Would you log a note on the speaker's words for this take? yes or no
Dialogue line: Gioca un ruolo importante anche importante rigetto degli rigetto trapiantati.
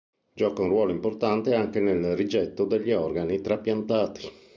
yes